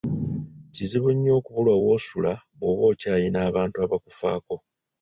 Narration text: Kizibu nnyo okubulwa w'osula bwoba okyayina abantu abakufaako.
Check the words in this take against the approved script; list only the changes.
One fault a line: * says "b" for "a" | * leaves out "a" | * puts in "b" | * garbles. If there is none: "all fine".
all fine